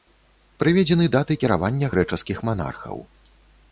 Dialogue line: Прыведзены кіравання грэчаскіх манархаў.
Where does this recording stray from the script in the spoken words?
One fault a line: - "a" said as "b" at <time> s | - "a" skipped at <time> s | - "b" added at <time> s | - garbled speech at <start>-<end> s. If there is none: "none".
- "даты" added at 1.1 s